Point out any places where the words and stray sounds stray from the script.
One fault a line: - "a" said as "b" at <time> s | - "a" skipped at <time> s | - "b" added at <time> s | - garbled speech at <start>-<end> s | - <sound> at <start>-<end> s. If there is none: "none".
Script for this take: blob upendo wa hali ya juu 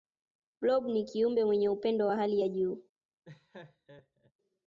- "ni kiumbe mwenye" added at 0.8 s
- laugh at 3.2-4.3 s